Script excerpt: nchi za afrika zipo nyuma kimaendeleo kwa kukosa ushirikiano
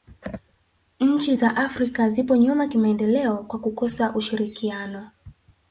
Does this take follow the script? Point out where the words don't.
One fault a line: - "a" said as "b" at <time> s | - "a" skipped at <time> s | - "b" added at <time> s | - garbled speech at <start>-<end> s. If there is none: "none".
none